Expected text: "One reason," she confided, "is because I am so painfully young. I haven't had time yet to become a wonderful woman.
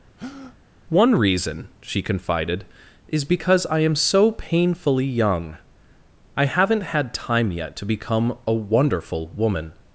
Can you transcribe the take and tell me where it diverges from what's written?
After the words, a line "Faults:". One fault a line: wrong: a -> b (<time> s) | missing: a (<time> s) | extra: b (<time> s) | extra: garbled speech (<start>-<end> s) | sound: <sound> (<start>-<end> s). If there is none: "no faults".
"One reason," she confided, "is because I am so painfully young. I haven't had time yet to become a wonderful woman.
Faults:
sound: breath (0.2-0.6 s)